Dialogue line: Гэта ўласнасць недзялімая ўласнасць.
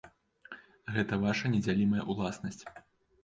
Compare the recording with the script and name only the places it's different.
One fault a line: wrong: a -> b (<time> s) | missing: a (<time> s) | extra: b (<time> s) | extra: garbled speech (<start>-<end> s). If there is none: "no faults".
wrong: ўласнасць -> ваша (1.2 s)